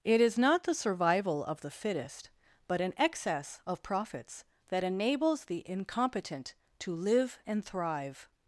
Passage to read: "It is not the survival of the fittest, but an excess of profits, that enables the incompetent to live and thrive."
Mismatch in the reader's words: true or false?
false